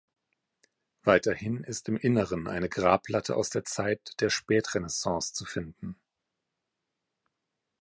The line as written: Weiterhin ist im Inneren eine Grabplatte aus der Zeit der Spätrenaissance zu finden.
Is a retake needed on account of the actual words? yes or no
no